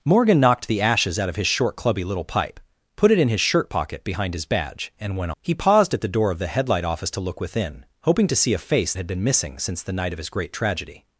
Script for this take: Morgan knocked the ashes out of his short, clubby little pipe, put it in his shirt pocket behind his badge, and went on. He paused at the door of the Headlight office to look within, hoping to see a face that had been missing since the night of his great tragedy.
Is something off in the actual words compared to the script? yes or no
yes